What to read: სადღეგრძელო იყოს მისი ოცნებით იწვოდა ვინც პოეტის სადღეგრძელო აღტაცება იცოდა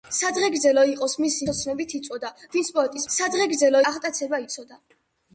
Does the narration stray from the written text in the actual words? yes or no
no